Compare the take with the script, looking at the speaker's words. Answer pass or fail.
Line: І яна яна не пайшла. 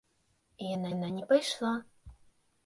pass